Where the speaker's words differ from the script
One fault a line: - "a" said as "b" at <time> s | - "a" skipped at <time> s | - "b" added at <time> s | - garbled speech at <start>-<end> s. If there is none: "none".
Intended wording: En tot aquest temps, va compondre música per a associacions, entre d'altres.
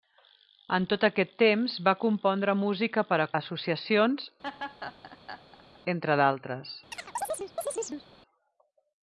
none